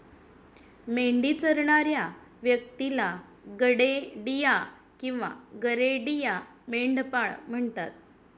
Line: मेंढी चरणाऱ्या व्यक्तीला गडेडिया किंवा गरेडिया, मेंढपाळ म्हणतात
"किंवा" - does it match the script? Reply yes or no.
yes